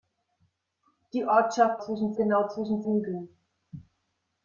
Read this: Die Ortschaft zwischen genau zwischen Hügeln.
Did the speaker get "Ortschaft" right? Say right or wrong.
right